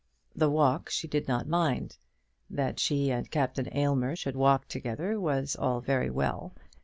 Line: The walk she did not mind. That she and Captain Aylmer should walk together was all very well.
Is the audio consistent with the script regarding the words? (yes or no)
yes